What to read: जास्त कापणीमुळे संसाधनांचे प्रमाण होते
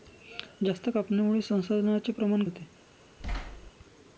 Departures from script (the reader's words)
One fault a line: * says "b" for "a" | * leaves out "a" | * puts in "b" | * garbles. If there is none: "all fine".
all fine